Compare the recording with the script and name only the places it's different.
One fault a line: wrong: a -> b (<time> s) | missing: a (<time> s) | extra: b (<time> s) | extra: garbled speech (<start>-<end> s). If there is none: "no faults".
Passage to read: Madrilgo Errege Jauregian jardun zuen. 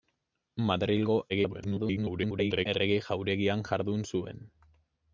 extra: garbled speech (1.3-2.7 s)